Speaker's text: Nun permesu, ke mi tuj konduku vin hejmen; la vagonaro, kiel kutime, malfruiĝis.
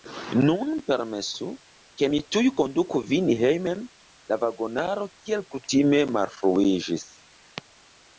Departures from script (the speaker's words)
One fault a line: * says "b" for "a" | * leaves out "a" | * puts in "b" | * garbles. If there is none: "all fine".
all fine